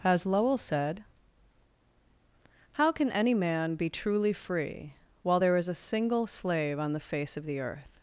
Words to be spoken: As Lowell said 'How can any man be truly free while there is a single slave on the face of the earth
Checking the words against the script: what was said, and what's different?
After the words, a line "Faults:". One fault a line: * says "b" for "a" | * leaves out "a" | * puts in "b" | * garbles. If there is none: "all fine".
As Lowell said 'How can any man be truly free while there is a single slave on the face of the earth
Faults:
all fine